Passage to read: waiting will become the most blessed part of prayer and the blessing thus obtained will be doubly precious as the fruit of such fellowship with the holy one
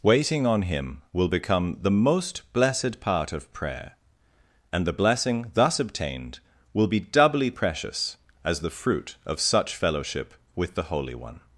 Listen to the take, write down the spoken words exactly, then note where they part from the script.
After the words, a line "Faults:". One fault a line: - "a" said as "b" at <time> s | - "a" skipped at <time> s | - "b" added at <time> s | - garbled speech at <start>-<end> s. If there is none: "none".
waiting on him will become the most blessed part of prayer and the blessing thus obtained will be doubly precious as the fruit of such fellowship with the holy one
Faults:
- "on him" added at 0.5 s